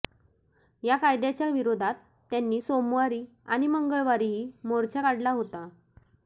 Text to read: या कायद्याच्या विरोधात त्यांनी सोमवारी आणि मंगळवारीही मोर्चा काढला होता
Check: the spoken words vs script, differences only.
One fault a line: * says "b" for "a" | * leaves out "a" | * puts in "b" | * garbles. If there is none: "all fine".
all fine